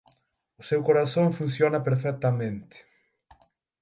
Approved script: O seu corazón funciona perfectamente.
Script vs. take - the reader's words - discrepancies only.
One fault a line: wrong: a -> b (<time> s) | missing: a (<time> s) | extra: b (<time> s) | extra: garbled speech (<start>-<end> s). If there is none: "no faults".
no faults